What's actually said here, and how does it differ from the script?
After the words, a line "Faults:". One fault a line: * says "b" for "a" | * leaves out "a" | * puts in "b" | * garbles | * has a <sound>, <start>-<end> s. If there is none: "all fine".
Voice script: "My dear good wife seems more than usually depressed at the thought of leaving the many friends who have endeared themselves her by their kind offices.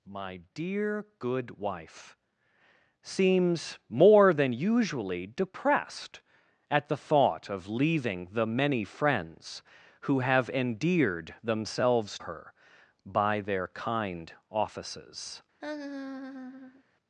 "My dear good wife seems more than usually depressed at the thought of leaving the many friends who have endeared themselves her by their kind offices.
Faults:
* has a laugh, 15.6-16.8 s